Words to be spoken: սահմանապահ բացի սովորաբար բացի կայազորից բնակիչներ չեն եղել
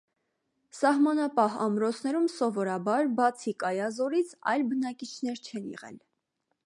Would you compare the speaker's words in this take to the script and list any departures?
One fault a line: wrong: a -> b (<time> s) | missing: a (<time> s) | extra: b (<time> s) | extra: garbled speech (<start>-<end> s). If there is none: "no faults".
wrong: բացի -> ամրոցներում (1.6 s)
extra: այլ (4.5 s)